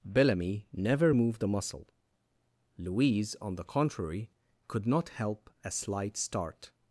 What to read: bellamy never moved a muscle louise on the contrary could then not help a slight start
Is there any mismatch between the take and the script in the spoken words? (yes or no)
yes